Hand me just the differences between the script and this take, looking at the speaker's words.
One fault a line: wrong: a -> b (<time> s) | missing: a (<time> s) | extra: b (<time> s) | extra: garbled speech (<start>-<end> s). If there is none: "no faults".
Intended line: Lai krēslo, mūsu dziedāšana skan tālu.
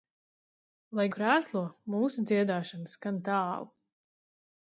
no faults